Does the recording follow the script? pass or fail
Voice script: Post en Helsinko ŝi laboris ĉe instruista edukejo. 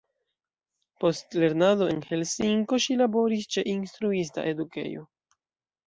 fail